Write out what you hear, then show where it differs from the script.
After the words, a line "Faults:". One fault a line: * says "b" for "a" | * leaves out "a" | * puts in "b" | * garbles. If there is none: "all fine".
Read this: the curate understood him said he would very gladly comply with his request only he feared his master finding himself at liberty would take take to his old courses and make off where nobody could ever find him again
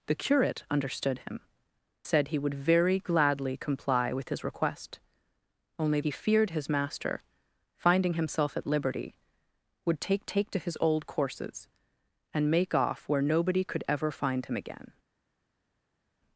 the curate understood him said he would very gladly comply with his request only he feared his master finding himself at liberty would take take to his old courses and make off where nobody could ever find him again
Faults:
all fine